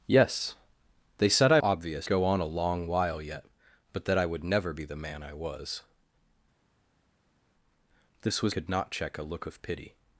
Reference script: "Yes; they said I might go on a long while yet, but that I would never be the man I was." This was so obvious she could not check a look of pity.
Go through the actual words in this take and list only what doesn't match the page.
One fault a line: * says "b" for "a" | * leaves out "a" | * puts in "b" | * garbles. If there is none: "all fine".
* says "obvious" for "might"
* leaves out "so obvious she"